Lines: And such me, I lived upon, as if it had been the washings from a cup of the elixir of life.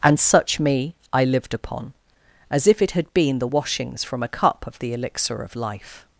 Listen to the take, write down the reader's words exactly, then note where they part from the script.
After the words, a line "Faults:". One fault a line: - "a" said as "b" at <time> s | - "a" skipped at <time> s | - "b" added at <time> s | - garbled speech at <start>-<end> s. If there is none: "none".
And such me, I lived upon, as if it had been the washings from a cup of the elixir of life.
Faults:
none